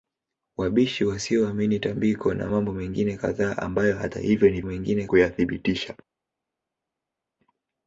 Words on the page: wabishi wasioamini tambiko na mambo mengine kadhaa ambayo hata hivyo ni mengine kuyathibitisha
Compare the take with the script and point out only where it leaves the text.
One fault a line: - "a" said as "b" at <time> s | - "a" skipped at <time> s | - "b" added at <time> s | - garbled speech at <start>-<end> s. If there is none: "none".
none